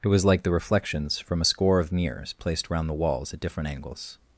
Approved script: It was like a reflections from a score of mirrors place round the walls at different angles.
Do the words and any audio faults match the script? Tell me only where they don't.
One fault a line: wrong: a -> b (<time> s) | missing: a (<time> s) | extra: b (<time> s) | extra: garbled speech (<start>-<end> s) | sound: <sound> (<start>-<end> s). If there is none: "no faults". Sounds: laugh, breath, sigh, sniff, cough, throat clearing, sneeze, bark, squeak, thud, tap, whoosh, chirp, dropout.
wrong: a -> the (0.4 s)
wrong: place -> placed (2.3 s)